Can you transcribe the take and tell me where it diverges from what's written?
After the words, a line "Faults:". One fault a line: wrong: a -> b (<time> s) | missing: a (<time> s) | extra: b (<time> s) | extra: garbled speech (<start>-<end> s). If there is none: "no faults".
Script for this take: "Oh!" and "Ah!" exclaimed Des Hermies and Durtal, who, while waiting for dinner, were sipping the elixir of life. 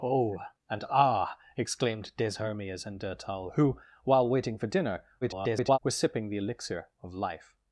"Oh!" and "Ah!" exclaimed Des Hermies and Durtal, who, while waiting for dinner, [garbled] were sipping the elixir of life.
Faults:
extra: garbled speech (5.2-5.8 s)